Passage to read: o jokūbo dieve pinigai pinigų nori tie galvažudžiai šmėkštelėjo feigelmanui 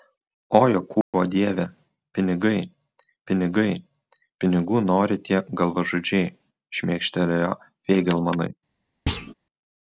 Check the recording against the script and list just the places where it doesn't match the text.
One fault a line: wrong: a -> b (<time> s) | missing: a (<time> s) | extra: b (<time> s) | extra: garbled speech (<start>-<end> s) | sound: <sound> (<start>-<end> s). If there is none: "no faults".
sound: dropout (1.0-1.1 s)
extra: pinigai (3.3 s)
sound: thud (9.1-9.3 s)